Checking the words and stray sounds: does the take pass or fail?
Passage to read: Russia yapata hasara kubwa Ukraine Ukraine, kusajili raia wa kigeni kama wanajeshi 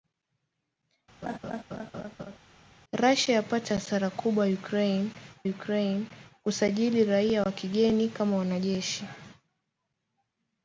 fail